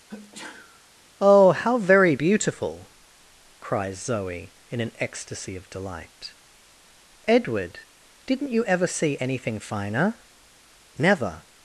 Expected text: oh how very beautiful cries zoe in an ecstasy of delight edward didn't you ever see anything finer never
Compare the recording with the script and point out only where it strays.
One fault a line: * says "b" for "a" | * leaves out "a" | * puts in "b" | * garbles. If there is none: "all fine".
all fine